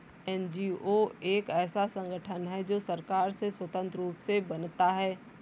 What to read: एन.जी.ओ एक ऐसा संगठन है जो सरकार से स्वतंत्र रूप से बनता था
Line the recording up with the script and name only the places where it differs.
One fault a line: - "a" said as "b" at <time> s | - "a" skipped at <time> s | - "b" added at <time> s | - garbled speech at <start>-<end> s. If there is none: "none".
- "था" said as "है" at 4.9 s